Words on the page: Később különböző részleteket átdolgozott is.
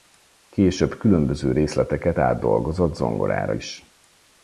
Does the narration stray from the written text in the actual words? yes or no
yes